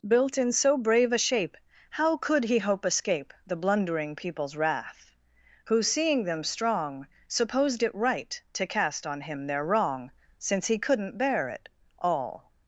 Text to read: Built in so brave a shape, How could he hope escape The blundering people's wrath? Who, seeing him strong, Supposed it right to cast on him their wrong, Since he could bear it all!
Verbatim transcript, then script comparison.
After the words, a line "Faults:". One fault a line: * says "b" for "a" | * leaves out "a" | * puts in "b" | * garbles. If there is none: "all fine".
Built in so brave a shape, How could he hope escape The blundering people's wrath? Who, seeing them strong, Supposed it right to cast on him their wrong, Since he couldn't bear it all!
Faults:
* says "them" for "him"
* says "couldn't" for "could"